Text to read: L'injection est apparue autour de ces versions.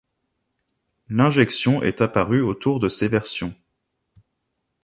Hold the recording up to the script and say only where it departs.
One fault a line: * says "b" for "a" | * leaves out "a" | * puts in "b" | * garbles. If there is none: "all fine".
all fine